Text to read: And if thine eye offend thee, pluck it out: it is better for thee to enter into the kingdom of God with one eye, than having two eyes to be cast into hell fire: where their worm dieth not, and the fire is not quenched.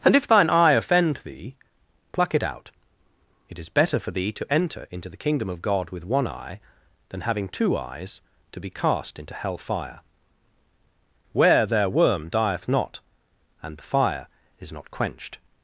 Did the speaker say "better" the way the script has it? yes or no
yes